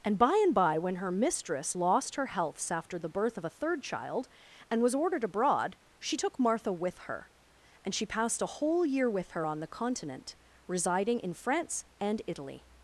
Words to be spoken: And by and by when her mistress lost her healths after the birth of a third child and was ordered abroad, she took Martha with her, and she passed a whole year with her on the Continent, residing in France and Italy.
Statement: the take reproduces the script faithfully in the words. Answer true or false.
true